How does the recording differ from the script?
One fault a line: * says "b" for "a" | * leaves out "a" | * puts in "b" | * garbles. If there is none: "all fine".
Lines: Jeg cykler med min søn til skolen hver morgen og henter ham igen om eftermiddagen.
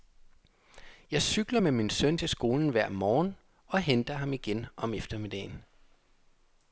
all fine